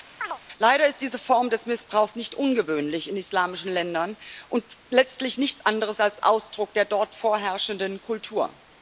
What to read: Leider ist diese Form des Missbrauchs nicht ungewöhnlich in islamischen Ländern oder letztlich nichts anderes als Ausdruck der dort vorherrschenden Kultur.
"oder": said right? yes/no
no